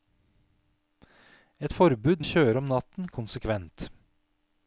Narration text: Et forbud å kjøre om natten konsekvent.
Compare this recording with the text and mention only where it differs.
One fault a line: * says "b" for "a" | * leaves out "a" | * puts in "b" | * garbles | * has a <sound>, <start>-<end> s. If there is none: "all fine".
all fine